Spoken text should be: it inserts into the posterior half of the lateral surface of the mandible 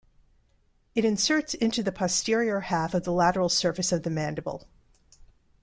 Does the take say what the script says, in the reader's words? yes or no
yes